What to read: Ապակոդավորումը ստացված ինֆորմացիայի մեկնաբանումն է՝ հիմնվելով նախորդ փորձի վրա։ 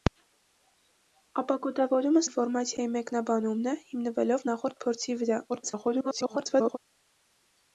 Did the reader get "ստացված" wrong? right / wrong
wrong